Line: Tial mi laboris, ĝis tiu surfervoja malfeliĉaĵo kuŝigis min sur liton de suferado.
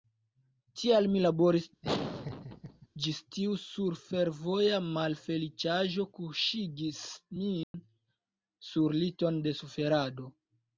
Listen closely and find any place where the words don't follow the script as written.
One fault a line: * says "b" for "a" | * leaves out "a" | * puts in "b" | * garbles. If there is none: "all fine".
all fine